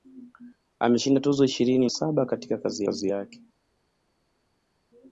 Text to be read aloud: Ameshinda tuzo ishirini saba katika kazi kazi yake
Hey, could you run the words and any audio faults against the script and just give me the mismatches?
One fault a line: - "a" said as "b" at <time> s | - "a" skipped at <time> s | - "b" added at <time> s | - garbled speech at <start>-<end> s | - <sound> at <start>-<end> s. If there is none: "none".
none